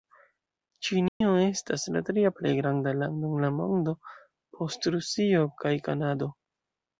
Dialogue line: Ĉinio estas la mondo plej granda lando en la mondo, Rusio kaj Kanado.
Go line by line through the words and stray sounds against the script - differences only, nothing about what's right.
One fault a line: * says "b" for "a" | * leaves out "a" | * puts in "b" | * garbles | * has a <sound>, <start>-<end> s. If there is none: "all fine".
* has a dropout, 1.1-1.2 s
* says "tria" for "mondo"
* puts in "post"